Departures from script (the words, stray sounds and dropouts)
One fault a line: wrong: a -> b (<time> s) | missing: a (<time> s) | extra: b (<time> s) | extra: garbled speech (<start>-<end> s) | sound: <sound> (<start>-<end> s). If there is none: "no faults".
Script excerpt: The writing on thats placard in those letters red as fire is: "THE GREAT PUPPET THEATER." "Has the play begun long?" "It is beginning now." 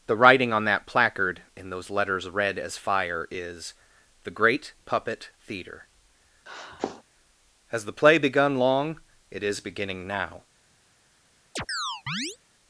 wrong: thats -> that (0.7 s)
sound: sniff (6.5-7.0 s)
sound: chirp (11.6-12.4 s)